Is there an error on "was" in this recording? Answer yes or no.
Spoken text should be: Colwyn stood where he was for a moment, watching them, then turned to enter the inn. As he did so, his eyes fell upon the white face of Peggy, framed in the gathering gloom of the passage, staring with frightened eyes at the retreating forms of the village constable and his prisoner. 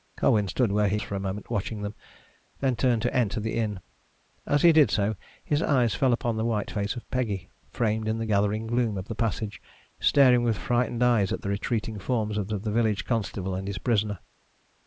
yes